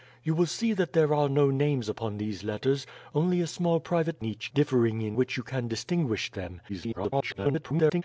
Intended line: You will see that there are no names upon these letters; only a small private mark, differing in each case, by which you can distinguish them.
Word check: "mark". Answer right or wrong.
wrong